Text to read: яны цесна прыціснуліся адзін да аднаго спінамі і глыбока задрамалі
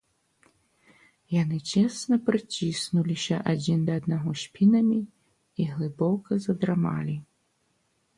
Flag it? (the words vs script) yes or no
no